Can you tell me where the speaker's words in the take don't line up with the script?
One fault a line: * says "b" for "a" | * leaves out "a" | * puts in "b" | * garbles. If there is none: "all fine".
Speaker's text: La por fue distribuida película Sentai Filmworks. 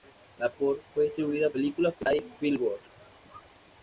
all fine